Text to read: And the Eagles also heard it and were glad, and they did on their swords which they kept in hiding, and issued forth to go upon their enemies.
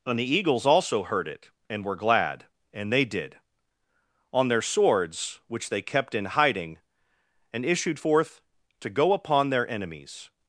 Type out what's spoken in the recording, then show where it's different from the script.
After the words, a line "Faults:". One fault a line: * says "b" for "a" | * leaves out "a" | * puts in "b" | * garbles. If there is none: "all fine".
And the Eagles also heard it and were glad, and they did on their swords which they kept in hiding, and issued forth to go upon their enemies.
Faults:
all fine